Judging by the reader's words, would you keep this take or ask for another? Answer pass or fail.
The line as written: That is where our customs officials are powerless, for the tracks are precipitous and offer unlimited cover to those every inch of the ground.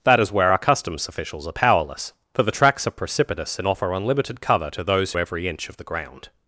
pass